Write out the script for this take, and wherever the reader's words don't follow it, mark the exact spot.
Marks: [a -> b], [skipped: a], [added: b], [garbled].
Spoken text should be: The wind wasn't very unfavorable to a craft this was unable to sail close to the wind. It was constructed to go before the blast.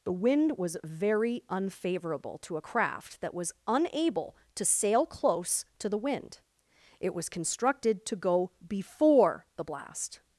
The wind [wasn't -> was] very unfavorable to a craft [this -> that] was unable to sail close to the wind. It was constructed to go before the blast.